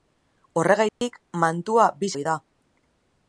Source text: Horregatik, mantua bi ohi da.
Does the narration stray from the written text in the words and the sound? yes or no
yes